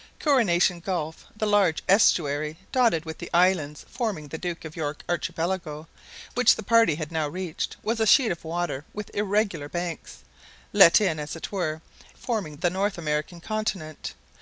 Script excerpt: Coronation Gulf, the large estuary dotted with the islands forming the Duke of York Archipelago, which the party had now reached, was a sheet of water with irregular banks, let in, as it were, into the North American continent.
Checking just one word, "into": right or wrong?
wrong